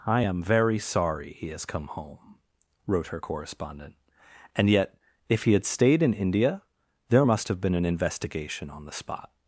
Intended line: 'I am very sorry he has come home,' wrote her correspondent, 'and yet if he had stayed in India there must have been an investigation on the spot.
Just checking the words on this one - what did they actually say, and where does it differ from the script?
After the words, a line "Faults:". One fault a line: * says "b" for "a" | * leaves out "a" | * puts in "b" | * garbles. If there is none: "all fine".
'I am very sorry he has come home,' wrote her correspondent, 'and yet if he had stayed in India there must have been an investigation on the spot.
Faults:
all fine